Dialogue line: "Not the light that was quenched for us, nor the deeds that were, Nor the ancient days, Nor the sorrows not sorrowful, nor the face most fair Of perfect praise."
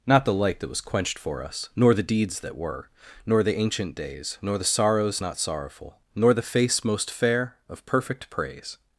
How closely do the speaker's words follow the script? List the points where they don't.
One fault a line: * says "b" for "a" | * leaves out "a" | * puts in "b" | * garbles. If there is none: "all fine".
all fine